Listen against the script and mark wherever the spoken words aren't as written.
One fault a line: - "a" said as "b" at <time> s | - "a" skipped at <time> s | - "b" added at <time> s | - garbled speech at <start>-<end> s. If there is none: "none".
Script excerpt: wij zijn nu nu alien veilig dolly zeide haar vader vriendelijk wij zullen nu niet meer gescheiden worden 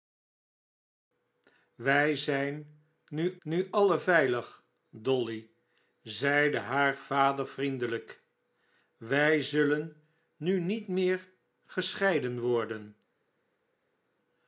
none